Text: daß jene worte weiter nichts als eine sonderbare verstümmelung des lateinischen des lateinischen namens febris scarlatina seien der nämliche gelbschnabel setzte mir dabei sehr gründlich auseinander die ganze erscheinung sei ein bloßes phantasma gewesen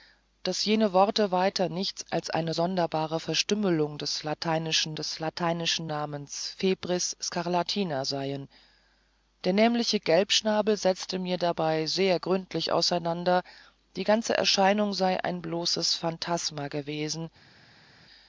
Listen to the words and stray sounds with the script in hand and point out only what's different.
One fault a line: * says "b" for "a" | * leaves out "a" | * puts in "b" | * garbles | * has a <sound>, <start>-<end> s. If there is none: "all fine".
all fine